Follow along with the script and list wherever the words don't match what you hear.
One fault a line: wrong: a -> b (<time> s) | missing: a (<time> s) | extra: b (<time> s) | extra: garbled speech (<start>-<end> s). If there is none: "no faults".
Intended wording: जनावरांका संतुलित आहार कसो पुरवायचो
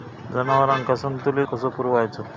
missing: आहार (1.5 s)